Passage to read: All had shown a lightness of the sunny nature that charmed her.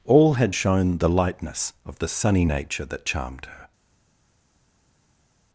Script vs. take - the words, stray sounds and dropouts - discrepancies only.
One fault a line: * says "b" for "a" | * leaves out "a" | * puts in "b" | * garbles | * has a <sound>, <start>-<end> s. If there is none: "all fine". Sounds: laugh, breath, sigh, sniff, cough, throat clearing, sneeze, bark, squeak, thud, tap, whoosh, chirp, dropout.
* says "the" for "a"